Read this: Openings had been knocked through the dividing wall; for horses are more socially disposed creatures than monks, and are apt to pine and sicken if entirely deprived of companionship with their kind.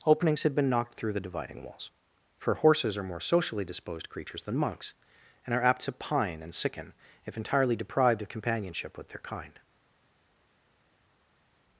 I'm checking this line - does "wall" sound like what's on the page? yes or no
no